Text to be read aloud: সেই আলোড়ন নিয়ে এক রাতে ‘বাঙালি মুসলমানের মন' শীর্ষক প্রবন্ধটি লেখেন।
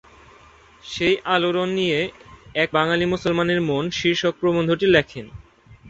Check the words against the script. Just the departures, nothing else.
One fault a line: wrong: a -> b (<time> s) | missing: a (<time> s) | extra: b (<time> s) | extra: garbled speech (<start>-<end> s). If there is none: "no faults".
missing: রাতে (2.7 s)